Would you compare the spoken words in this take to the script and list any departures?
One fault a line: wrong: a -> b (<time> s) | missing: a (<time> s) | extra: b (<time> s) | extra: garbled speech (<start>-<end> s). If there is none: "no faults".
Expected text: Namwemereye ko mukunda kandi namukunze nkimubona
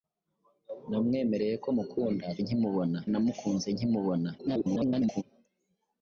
wrong: kandi -> nkimubona (2.4 s)
extra: garbled speech (4.4-5.2 s)